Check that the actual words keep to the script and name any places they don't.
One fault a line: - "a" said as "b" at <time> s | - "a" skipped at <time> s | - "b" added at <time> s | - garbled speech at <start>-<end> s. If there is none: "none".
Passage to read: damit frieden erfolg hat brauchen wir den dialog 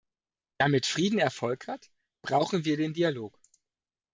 none